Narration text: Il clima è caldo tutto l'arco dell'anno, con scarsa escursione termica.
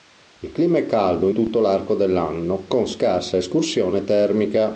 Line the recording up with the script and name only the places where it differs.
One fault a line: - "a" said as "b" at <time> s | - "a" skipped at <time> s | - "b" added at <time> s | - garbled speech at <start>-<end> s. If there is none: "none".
none